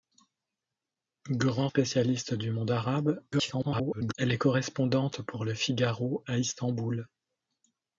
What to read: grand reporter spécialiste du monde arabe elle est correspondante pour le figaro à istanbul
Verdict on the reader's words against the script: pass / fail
fail